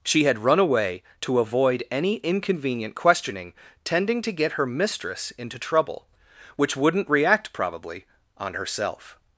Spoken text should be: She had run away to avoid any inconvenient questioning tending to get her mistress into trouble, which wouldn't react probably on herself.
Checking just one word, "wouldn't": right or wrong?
right